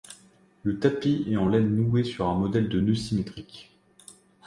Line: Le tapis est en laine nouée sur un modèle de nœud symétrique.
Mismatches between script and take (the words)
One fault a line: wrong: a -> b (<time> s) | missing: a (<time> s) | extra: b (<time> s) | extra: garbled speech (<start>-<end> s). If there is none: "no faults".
no faults